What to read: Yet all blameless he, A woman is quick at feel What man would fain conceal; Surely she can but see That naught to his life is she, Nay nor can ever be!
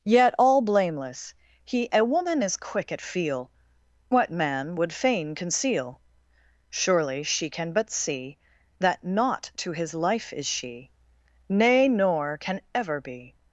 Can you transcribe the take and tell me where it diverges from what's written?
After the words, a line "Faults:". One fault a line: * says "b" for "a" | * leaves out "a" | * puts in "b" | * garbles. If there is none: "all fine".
Yet all blameless he, A woman is quick at feel What man would fain conceal; Surely she can but see That naught to his life is she, Nay nor can ever be!
Faults:
all fine